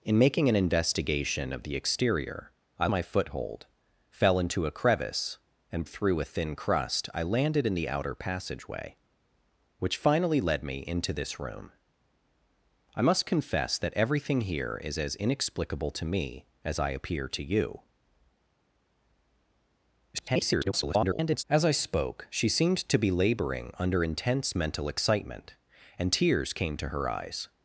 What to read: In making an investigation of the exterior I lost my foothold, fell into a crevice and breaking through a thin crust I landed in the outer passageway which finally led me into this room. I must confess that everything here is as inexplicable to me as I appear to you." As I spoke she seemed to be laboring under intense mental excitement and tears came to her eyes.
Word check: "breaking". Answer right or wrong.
wrong